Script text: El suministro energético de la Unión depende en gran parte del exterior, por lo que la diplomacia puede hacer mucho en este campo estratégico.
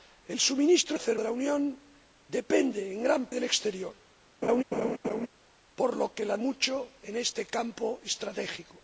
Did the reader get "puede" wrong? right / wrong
wrong